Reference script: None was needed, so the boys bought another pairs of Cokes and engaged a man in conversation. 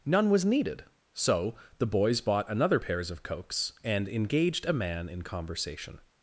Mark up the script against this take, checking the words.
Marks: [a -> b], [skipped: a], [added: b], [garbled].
None was needed, so the boys bought another pairs of Cokes and engaged a man in conversation.